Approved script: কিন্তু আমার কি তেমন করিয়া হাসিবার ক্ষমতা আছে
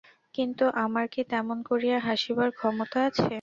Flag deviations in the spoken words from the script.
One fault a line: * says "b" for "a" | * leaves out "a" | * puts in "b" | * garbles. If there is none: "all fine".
all fine